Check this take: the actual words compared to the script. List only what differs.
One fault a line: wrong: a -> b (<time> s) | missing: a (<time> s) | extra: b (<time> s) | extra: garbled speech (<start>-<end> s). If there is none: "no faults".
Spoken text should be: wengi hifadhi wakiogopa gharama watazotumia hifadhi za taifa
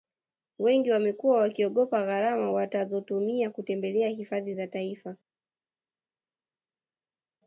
wrong: hifadhi -> wamekuwa (0.9 s)
extra: kutembelea (3.5 s)